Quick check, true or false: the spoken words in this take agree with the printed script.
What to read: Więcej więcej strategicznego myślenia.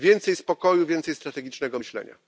false